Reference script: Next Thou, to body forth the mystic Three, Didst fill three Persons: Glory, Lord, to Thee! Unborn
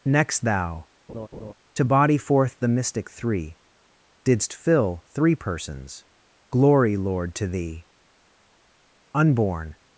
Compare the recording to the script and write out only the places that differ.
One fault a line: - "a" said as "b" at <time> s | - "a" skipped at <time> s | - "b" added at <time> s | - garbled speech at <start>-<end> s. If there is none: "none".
none